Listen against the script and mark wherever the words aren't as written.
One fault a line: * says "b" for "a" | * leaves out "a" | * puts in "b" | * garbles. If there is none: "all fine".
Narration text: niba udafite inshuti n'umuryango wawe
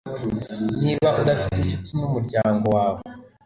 all fine